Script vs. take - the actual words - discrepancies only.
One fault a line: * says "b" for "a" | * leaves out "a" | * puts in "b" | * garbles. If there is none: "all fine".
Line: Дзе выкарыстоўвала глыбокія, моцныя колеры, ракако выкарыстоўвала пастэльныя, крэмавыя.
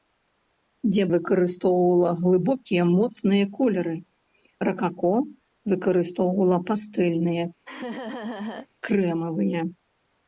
all fine